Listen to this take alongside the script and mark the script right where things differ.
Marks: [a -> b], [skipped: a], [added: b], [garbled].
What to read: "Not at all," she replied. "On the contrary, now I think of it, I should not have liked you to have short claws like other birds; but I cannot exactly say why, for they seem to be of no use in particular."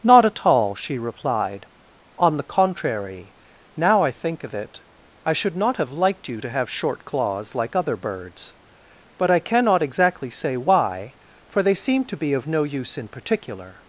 "Not at all," she replied. "On the contrary, now I think of it, I should not have liked you to have short claws like other birds; but I cannot exactly say why, for they seem to be of no use in particular."